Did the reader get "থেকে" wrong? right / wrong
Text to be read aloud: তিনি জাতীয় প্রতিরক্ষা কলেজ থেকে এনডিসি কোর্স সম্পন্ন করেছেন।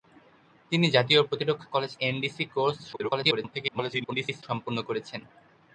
wrong